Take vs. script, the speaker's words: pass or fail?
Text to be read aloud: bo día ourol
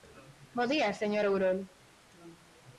fail